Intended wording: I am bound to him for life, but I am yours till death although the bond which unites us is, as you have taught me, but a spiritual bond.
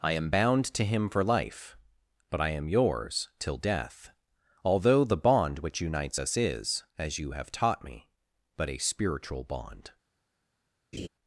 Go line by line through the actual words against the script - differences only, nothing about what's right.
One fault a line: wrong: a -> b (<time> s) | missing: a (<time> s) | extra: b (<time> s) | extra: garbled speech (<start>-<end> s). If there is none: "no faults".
no faults